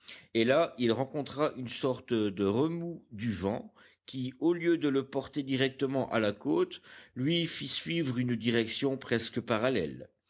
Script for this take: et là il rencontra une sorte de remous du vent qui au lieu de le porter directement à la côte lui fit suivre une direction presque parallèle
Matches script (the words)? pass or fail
pass